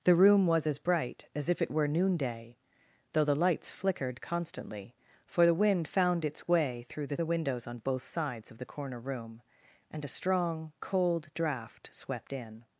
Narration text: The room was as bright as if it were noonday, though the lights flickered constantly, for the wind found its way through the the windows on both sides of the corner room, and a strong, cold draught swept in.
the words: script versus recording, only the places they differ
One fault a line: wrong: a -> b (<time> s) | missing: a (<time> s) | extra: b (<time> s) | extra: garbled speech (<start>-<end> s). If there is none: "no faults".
no faults